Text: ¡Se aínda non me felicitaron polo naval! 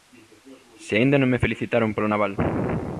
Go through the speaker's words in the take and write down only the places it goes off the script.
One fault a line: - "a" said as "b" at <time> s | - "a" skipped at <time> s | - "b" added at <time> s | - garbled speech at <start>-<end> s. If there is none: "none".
none